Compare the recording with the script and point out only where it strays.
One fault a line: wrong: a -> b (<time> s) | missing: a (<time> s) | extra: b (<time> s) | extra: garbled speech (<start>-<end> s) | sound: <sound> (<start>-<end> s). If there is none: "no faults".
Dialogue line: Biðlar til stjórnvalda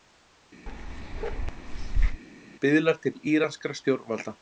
sound: bark (0.7-2.2 s)
extra: íranskra (3.3 s)